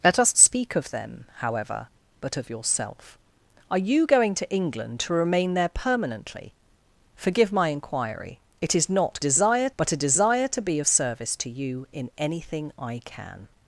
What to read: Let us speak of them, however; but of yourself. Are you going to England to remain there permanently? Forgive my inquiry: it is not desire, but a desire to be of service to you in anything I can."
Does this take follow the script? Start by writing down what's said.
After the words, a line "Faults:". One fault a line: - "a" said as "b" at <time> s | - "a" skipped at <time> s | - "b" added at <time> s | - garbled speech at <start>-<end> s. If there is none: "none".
Let us speak of them, however; but of yourself. Are you going to England to remain there permanently? Forgive my inquiry: it is not desire, but a desire to be of service to you in anything I can."
Faults:
none